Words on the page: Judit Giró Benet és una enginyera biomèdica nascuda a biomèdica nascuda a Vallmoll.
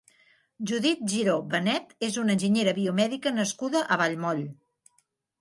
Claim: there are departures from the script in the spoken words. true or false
true